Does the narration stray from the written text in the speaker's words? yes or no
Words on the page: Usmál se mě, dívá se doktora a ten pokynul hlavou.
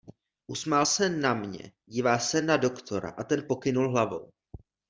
yes